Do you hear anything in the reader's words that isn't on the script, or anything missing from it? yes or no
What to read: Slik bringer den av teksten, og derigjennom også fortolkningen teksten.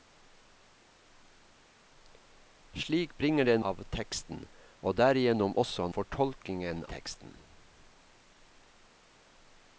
no